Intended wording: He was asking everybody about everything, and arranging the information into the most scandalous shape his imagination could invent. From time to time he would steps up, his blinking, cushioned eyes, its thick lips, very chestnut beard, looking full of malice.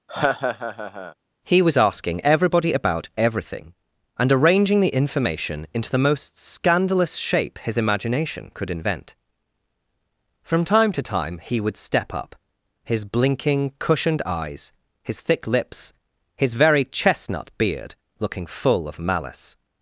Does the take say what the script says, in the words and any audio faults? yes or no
no